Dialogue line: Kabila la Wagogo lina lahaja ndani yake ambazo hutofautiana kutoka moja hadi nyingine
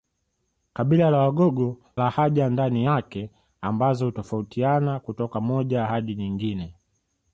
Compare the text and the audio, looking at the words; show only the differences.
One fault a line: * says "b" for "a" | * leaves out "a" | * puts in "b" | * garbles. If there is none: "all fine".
* leaves out "lina"